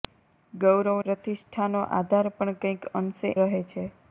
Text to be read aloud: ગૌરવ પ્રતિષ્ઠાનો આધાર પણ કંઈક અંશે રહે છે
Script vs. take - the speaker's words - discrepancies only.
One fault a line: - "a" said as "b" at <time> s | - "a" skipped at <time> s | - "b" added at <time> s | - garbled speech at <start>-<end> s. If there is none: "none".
none